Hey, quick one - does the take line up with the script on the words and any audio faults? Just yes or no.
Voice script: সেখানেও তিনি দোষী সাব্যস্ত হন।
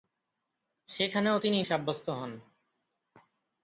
no